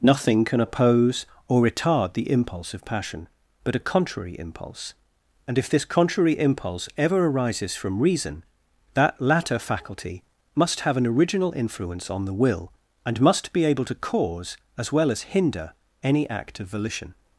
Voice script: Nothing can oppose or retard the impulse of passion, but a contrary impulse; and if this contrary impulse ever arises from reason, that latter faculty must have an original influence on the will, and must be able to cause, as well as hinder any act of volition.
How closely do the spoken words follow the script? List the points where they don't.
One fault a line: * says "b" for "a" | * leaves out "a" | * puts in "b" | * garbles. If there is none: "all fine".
all fine